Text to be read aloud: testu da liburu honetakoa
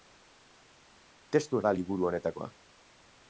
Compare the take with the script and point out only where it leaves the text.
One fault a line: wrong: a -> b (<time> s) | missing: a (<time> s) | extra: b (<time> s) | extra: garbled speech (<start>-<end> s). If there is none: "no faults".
no faults